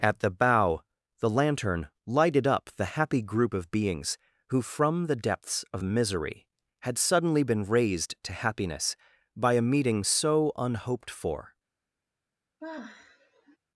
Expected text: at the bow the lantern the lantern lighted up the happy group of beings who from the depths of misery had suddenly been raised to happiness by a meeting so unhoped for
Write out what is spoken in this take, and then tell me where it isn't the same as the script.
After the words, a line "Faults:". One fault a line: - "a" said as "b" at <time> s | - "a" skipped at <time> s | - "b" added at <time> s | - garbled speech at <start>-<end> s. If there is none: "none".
at the bow the lantern lighted up the happy group of beings who from the depths of misery had suddenly been raised to happiness by a meeting so unhoped for
Faults:
- "the lantern" skipped at 1.9 s